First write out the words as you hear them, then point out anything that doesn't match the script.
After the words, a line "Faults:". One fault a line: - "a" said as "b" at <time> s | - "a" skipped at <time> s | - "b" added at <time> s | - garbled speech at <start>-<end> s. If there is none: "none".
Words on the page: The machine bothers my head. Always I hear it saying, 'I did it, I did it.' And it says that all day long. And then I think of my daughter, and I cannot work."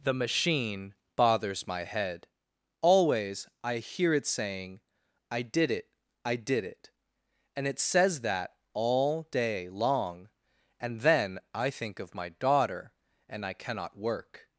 The machine bothers my head. Always I hear it saying, 'I did it, I did it.' And it says that all day long. And then I think of my daughter, and I cannot work."
Faults:
none